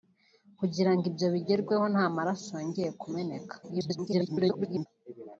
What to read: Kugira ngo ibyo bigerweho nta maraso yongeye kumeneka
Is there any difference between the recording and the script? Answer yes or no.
yes